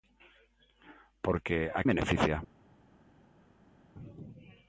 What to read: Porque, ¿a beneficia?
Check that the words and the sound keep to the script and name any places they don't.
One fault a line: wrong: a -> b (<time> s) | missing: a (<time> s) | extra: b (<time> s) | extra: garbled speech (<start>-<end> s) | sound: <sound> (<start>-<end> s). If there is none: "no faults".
no faults